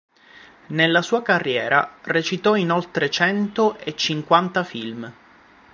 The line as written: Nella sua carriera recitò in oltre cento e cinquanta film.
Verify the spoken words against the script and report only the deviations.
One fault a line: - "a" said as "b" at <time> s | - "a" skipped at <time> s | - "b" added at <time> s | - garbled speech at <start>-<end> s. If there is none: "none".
none